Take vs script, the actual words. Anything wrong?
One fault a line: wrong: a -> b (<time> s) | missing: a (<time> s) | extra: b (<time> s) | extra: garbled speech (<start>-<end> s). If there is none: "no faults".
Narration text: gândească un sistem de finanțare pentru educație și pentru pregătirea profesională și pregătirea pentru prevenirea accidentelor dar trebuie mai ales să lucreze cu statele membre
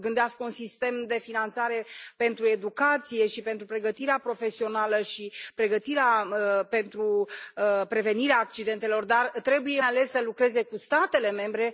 missing: mai (9.8 s)